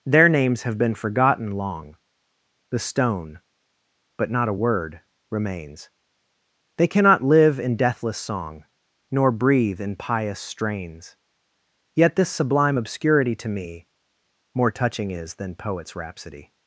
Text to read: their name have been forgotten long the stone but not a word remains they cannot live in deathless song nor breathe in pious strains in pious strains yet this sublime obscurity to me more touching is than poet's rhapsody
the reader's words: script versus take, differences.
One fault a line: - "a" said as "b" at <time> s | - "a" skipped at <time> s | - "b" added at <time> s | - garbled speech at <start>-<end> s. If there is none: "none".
- "name" said as "names" at 0.3 s
- "in pious strains" skipped at 11.2 s